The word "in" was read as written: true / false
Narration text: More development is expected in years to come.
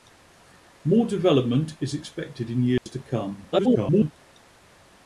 true